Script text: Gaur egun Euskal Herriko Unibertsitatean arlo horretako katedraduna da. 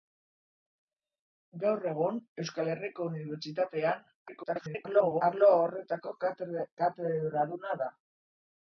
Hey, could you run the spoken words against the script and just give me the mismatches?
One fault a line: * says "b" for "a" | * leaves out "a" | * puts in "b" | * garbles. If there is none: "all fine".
* garbles